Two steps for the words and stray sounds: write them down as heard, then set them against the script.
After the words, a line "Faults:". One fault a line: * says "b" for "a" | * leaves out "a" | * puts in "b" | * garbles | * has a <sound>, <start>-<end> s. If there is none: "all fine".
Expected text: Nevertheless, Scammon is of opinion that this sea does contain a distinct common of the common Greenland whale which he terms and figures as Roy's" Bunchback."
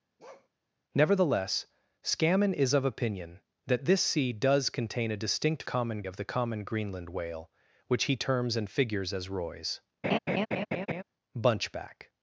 Nevertheless, Scammon is of opinion that this sea does contain a distinct common of the common Greenland whale which he terms and figures as Roy's" Bunchback."
Faults:
* has a bark, 0.2-0.5 s
* has a laugh, 10.0-11.0 s